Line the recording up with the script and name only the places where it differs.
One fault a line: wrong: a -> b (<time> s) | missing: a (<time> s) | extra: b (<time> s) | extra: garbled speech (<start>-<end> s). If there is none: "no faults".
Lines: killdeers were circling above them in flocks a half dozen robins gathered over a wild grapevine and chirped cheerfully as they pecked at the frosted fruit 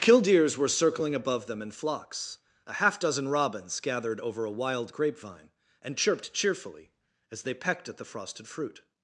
no faults